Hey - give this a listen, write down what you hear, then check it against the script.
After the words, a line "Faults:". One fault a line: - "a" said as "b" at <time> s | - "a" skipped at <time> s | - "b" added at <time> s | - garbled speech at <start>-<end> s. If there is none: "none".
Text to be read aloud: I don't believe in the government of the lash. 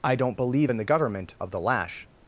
I don't believe in the government of the lash.
Faults:
none